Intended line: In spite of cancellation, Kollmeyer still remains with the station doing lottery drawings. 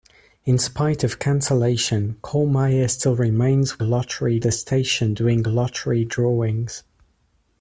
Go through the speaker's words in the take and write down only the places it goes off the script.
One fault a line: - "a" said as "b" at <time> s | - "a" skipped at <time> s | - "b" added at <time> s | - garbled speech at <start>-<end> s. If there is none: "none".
- "with" said as "lottery" at 3.8 s